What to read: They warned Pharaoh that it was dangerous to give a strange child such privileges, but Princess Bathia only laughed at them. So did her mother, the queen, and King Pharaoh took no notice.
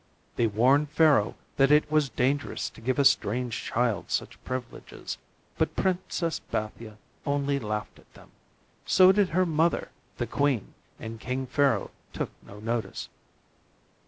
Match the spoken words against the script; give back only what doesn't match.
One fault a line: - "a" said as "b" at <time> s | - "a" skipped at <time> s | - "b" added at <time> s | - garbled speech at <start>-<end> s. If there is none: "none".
none